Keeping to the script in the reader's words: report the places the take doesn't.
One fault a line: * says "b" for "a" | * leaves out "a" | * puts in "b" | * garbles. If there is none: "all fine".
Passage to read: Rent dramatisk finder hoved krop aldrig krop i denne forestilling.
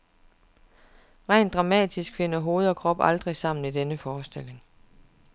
* puts in "og"
* says "sammen" for "krop"